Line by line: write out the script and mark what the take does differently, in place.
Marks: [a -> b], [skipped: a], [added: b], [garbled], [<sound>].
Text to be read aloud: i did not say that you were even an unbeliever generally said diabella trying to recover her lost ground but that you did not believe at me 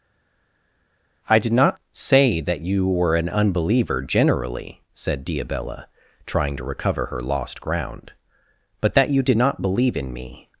i did not say that you were [skipped: even] an unbeliever generally said diabella trying to recover her lost ground but that you did not believe [at -> in] me